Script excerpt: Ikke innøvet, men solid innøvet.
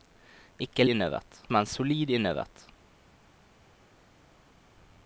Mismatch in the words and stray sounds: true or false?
false